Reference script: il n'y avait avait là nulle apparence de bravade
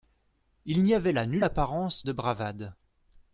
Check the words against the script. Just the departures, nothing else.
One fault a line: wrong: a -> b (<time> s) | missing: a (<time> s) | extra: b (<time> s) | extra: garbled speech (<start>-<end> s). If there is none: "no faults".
missing: avait (1.1 s)